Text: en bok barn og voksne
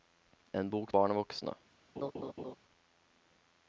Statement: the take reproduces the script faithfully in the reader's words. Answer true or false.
true